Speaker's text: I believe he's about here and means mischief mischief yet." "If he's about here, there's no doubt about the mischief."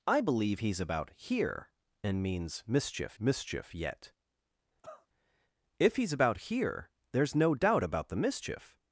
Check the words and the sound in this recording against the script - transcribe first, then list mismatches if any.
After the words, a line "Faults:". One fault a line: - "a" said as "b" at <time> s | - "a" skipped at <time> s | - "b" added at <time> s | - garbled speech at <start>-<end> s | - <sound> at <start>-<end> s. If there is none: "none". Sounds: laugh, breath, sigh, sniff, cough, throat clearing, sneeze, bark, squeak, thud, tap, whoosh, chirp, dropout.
I believe he's about here and means mischief mischief yet." "If he's about here, there's no doubt about the mischief."
Faults:
- cough at 4.8-5.1 s